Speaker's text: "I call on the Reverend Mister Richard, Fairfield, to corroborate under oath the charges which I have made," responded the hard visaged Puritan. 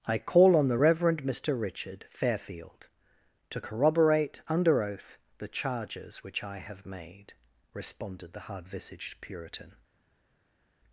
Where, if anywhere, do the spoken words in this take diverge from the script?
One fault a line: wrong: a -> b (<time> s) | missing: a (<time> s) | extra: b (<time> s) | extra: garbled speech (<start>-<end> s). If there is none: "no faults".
no faults